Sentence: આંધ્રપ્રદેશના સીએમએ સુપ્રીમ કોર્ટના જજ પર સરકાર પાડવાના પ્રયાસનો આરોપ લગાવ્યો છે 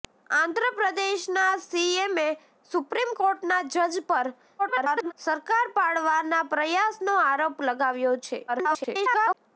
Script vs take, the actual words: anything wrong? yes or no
yes